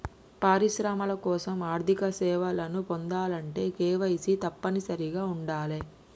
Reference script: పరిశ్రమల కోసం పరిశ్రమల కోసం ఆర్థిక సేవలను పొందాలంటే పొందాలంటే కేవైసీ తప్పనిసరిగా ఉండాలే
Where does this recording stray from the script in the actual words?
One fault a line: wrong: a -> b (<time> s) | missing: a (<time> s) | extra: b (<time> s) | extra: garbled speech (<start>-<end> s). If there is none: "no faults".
missing: పరిశ్రమల కోసం (1.6 s)
missing: పొందాలంటే (3.7 s)